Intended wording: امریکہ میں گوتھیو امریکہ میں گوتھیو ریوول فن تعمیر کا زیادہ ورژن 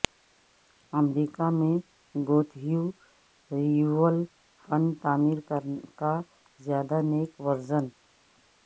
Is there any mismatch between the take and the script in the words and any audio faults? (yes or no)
yes